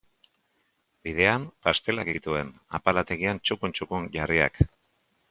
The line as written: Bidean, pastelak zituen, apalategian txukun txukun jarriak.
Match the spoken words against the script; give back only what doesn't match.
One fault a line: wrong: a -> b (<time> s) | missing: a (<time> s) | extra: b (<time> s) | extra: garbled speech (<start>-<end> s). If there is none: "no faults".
no faults